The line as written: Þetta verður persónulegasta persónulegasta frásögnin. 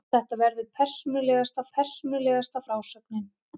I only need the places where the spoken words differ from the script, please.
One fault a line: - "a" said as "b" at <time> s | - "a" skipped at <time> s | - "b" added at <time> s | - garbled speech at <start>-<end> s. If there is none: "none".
none